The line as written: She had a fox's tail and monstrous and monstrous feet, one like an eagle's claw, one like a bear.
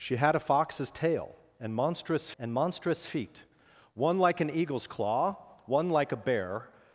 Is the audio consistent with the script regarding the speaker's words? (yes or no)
yes